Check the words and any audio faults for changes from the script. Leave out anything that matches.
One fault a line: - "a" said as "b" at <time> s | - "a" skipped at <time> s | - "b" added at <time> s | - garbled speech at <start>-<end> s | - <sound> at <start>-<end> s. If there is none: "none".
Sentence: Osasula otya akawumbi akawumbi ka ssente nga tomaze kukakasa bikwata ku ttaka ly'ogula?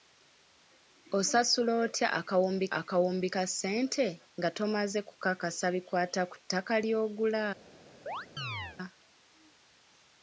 - chirp at 8.1-8.8 s